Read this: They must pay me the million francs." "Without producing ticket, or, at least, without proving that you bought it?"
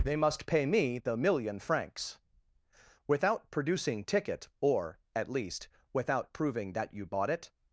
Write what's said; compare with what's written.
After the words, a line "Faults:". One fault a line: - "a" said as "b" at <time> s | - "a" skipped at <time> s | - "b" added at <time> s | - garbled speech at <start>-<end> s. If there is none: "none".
They must pay me the million francs." "Without producing ticket, or, at least, without proving that you bought it?"
Faults:
none